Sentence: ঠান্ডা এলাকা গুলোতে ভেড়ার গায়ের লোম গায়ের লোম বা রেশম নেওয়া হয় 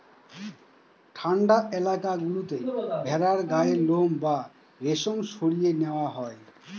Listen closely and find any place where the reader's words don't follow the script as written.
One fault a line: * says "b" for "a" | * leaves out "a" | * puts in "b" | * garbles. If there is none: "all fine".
* leaves out "গায়ের লোম"
* puts in "সরিয়ে"